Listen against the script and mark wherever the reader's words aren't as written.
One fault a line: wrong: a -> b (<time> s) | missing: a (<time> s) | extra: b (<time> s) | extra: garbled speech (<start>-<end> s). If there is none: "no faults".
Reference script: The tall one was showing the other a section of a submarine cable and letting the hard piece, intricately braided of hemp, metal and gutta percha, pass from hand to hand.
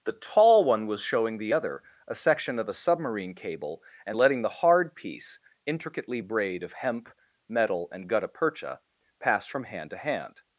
wrong: braided -> braid (6.2 s)